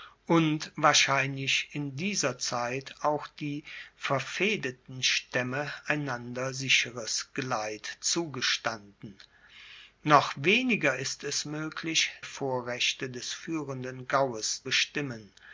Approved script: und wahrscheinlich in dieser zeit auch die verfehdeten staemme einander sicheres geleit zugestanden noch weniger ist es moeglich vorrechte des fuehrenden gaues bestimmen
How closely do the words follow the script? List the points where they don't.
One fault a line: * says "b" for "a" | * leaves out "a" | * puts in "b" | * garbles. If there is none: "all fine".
all fine